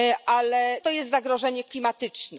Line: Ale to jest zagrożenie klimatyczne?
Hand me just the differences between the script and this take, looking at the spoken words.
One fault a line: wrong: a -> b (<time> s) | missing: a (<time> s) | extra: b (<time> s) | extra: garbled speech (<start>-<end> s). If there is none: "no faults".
no faults